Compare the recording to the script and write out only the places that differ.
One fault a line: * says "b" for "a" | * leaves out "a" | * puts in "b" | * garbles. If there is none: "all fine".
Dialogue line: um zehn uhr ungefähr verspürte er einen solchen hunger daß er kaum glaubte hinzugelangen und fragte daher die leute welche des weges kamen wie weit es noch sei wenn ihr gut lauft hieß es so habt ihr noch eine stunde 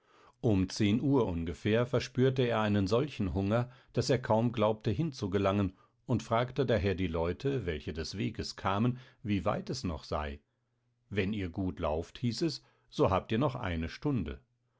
all fine